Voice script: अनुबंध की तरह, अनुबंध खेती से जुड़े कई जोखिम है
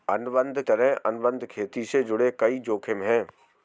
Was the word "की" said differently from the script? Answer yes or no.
yes